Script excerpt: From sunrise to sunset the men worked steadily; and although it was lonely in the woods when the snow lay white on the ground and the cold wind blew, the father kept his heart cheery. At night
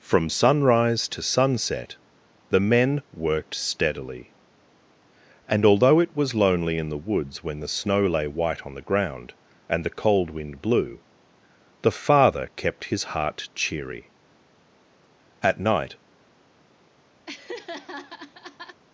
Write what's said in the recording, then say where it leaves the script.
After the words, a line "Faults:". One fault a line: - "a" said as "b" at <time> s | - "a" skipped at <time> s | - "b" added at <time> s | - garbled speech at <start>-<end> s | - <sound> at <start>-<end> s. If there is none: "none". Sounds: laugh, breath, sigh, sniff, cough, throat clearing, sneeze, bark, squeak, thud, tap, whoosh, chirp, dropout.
From sunrise to sunset the men worked steadily; and although it was lonely in the woods when the snow lay white on the ground and the cold wind blew, the father kept his heart cheery. At night
Faults:
- laugh at 17.3-18.8 s